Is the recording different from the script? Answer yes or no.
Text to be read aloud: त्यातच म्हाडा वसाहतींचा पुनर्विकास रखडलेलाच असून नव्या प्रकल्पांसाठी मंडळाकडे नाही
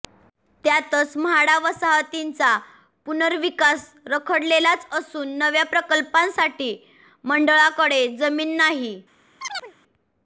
yes